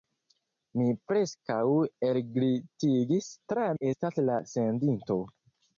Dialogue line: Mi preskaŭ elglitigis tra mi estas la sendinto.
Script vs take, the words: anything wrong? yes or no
no